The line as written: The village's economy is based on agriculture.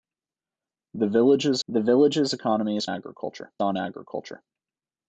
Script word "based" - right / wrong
wrong